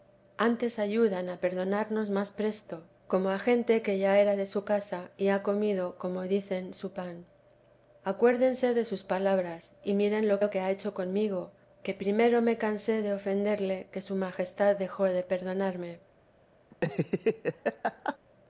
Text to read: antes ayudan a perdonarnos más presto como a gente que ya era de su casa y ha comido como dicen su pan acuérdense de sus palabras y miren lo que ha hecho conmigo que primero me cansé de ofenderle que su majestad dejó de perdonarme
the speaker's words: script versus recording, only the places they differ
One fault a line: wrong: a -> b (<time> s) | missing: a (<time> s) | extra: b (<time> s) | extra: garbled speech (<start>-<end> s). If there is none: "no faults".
extra: lo (10.4 s)